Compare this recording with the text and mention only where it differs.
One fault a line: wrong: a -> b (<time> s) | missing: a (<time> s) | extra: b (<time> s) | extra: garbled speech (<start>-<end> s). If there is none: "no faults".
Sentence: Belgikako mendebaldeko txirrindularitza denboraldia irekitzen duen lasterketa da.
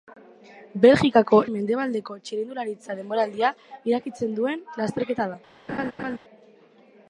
no faults